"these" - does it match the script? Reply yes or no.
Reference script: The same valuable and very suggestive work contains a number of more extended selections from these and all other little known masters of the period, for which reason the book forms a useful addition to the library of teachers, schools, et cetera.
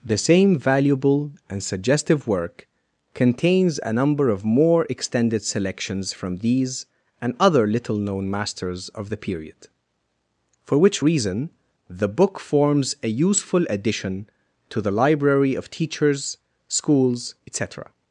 yes